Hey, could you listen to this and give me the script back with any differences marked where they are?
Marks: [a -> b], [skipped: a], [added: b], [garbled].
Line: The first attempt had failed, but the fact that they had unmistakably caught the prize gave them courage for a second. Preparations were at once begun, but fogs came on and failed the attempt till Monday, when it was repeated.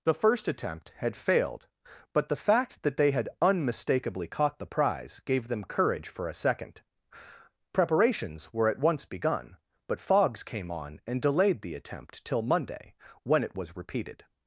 The first attempt had failed, but the fact that they had unmistakably caught the prize gave them courage for a second. Preparations were at once begun, but fogs came on and [failed -> delayed] the attempt till Monday, when it was repeated.